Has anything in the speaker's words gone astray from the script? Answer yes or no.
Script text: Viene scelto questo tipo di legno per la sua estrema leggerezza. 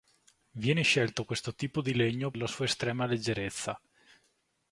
yes